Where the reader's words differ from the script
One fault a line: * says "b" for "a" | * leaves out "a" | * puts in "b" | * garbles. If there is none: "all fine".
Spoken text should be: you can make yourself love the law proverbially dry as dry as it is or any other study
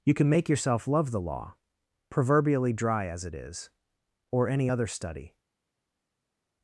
* leaves out "dry as"